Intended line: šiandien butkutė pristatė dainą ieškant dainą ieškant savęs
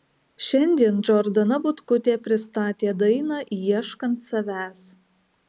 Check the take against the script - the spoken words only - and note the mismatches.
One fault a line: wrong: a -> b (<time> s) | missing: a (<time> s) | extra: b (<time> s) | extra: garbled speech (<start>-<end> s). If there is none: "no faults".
extra: džordana (1.1 s)
missing: dainą ieškant (4.2 s)